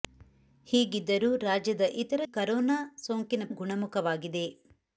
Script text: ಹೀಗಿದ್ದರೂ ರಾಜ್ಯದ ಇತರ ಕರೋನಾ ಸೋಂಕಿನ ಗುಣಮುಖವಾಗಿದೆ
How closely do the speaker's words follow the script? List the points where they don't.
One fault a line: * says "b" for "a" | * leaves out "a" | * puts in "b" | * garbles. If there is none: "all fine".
all fine